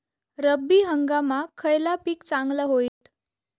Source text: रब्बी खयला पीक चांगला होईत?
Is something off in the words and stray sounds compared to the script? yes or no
yes